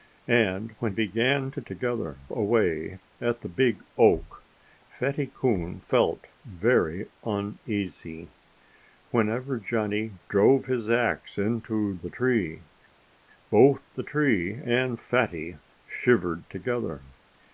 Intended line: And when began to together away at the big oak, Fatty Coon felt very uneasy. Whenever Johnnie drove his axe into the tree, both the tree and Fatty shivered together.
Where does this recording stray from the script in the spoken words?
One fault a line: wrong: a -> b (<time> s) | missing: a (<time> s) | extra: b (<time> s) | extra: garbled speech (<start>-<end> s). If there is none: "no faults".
no faults